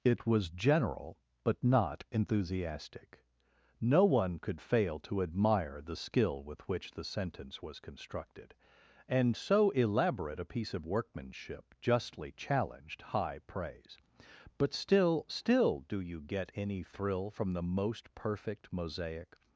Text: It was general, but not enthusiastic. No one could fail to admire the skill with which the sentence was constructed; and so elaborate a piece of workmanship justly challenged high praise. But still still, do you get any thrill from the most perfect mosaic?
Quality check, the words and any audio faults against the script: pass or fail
pass